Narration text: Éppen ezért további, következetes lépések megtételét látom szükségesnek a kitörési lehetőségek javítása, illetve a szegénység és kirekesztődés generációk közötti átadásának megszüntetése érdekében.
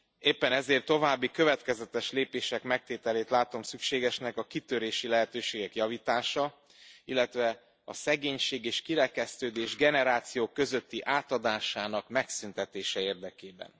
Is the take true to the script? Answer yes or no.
yes